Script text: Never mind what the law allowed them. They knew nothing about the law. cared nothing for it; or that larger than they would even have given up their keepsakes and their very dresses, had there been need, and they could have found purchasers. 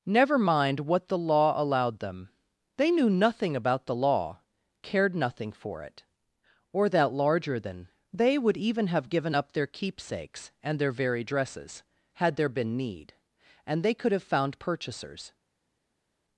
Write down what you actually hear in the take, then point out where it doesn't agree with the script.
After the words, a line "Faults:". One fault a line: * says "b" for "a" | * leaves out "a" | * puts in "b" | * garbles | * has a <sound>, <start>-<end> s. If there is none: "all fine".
Never mind what the law allowed them. They knew nothing about the law. cared nothing for it; or that larger than they would even have given up their keepsakes and their very dresses, had there been need, and they could have found purchasers.
Faults:
all fine